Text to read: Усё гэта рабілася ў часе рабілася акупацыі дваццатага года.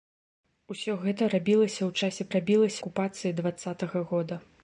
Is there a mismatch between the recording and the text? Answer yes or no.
no